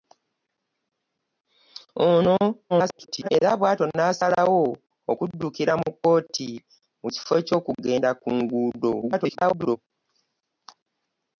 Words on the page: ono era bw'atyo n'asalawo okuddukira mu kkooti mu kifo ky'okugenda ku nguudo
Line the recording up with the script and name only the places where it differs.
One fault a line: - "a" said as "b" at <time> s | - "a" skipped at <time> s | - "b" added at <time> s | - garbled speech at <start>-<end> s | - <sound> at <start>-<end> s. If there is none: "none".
- garbled speech at 2.7-3.3 s
- garbled speech at 9.0-9.8 s